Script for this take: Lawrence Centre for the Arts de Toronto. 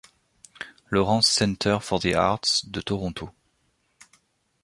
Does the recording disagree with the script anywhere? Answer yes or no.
no